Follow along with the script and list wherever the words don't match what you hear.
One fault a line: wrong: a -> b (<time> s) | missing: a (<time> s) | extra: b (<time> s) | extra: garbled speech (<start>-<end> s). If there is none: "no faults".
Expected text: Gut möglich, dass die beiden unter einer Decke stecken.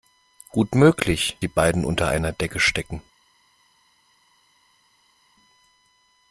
missing: dass (1.4 s)